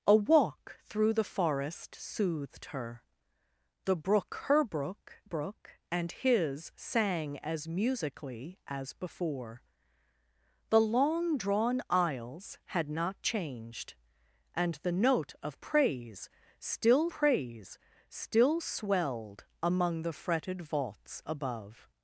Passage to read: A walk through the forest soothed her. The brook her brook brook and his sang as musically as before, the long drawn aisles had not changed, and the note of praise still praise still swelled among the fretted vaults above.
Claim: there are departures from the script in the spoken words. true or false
false